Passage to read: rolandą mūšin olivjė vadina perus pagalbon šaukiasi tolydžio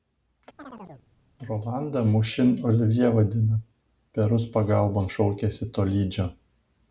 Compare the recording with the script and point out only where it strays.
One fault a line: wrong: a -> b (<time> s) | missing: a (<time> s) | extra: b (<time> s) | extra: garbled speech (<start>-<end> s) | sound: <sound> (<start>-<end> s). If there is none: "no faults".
sound: chirp (0.6-1.1 s)